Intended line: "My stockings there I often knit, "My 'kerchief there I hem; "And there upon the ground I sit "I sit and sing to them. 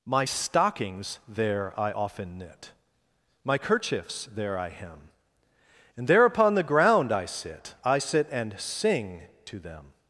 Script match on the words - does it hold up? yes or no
no